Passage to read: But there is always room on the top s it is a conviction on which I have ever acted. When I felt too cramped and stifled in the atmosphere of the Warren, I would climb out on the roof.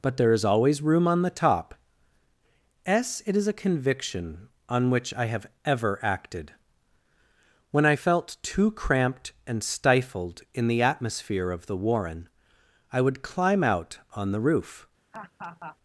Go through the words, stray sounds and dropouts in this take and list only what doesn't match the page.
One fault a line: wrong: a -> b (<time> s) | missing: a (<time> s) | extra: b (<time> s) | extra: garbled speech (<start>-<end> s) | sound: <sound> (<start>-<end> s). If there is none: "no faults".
sound: laugh (15.1-15.8 s)